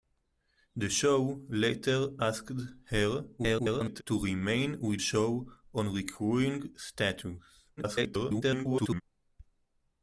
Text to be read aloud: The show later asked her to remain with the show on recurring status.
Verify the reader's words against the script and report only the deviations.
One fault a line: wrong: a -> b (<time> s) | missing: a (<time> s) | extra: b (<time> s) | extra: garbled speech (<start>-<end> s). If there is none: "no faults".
extra: garbled speech (3.4-4.0 s)
missing: the (5.0 s)
extra: garbled speech (7.8-9.0 s)